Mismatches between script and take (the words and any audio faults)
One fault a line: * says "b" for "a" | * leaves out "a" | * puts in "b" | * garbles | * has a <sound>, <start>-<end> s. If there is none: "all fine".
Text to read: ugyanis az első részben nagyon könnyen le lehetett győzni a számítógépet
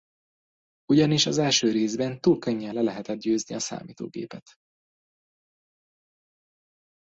* says "túl" for "nagyon"